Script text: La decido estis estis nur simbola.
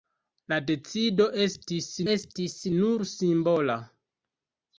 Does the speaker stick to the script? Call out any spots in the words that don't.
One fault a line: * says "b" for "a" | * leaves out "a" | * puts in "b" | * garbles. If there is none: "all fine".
all fine